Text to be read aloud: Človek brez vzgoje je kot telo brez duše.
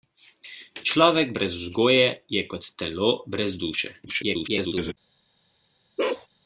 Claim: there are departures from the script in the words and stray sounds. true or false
true